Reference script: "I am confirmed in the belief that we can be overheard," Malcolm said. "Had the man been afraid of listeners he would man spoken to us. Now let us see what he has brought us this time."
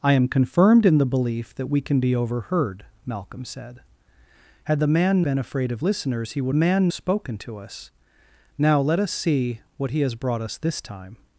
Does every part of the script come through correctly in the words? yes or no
yes